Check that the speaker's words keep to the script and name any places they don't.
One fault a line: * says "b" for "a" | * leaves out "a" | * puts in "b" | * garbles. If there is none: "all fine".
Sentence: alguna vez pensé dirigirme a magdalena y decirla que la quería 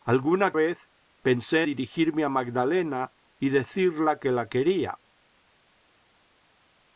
all fine